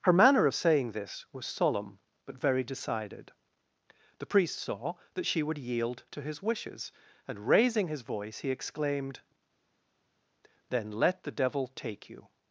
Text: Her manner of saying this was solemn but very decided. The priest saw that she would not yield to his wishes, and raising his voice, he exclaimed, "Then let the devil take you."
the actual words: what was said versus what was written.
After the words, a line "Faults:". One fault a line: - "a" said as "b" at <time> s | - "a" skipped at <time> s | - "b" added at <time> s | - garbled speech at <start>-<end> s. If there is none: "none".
Her manner of saying this was solemn but very decided. The priest saw that she would yield to his wishes, and raising his voice, he exclaimed, "Then let the devil take you."
Faults:
- "not" skipped at 5.6 s